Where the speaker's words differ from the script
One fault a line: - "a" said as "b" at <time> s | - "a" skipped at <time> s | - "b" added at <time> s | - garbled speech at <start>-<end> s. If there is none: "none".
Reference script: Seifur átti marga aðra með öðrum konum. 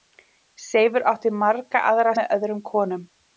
none